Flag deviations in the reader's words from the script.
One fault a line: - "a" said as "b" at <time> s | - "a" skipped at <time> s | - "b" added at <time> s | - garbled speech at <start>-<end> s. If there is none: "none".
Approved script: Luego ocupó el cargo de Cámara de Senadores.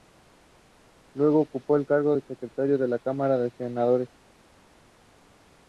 - "Secretario de la" added at 2.2 s